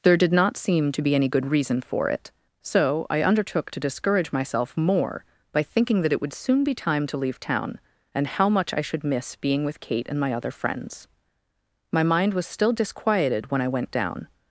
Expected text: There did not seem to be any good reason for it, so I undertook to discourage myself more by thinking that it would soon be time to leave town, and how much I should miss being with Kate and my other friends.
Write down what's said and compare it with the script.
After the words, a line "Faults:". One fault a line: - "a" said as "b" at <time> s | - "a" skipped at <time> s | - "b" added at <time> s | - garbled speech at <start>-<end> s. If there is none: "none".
There did not seem to be any good reason for it, so I undertook to discourage myself more by thinking that it would soon be time to leave town, and how much I should miss being with Kate and my other friends. My mind was still disquieted when I went down
Faults:
- "My mind was still disquieted when I went down" added at 11.9 s